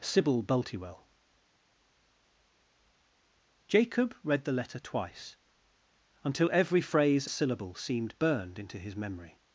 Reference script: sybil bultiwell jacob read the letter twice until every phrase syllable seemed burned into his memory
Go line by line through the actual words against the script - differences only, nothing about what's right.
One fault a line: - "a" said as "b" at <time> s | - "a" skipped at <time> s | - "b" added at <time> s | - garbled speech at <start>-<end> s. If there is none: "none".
none